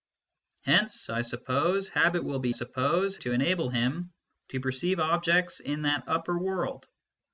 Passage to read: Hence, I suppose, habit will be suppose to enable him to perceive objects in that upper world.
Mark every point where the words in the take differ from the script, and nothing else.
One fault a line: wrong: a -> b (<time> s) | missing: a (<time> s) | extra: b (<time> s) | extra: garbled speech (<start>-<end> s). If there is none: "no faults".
no faults